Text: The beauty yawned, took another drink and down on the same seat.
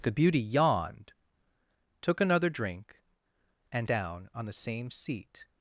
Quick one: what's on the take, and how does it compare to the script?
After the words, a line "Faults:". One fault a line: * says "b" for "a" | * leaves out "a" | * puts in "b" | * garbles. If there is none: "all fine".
The beauty yawned, took another drink and down on the same seat.
Faults:
all fine